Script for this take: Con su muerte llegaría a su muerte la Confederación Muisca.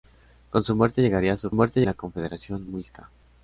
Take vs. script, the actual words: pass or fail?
pass